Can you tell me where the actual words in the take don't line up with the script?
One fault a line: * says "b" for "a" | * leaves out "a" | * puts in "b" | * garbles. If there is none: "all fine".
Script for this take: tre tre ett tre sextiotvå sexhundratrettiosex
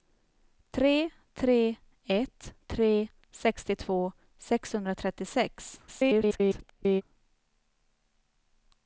* garbles